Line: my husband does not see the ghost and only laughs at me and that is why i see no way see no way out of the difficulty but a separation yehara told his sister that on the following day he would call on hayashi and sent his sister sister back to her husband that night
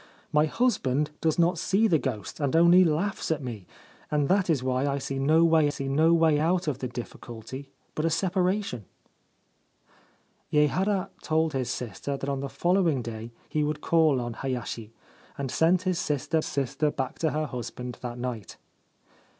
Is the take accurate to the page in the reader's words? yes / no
yes